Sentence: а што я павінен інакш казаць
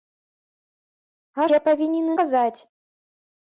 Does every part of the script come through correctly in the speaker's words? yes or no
no